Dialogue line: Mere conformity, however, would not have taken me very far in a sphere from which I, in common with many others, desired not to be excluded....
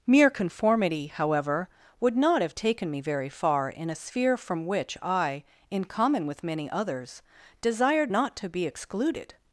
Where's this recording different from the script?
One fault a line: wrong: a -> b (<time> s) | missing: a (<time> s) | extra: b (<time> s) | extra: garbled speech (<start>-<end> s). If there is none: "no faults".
no faults